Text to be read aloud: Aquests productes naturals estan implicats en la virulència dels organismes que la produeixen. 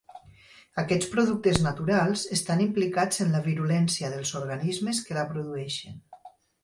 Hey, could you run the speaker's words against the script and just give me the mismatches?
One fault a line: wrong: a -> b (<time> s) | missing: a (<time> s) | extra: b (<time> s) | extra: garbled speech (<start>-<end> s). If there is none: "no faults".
no faults